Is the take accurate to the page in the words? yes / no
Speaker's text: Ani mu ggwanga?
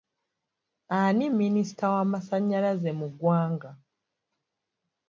no